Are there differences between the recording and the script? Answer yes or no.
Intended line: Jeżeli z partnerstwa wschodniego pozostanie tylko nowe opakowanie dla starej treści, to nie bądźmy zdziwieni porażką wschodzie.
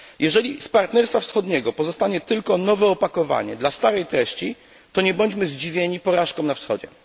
yes